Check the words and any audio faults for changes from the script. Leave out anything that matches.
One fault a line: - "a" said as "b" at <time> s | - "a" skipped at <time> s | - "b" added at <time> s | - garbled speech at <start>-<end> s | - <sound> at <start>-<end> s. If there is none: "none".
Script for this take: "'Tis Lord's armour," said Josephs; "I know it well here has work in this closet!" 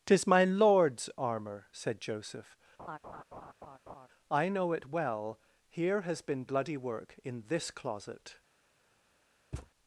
- "my" added at 0.2 s
- "Josephs" said as "Joseph" at 2.0 s
- laugh at 2.8-4.1 s
- "been bloody" added at 6.2 s
- thud at 9.5-9.7 s